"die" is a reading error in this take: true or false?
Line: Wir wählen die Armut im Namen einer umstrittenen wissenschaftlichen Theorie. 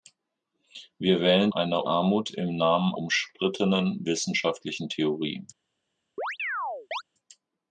true